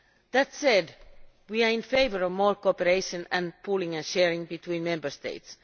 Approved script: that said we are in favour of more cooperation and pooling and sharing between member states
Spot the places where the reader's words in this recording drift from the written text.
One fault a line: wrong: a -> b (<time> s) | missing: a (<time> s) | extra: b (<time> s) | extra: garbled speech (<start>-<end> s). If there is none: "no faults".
no faults